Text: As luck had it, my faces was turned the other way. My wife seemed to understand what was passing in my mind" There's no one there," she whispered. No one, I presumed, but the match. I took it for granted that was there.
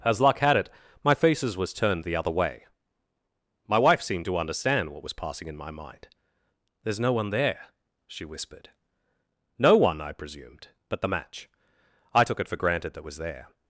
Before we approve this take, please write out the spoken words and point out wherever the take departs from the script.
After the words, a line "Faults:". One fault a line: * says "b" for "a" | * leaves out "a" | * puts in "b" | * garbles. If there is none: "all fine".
As luck had it, my faces was turned the other way. My wife seemed to understand what was passing in my mind" There's no one there," she whispered. No one, I presumed, but the match. I took it for granted that was there.
Faults:
all fine